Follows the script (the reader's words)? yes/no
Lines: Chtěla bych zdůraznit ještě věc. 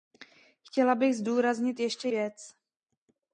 yes